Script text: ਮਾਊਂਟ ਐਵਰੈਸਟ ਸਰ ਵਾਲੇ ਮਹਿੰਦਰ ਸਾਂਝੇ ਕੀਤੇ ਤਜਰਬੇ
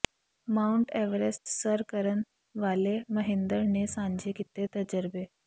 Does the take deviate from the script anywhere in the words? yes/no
yes